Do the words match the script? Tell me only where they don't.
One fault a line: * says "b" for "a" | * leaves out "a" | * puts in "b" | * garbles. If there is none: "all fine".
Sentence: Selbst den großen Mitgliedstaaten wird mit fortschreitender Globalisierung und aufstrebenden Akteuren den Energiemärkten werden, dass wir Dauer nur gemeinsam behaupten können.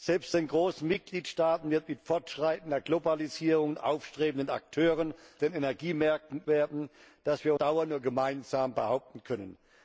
all fine